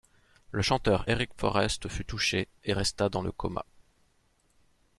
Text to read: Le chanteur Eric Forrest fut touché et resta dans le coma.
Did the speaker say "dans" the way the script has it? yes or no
yes